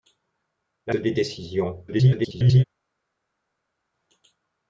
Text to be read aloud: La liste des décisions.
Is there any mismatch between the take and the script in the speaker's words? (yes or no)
yes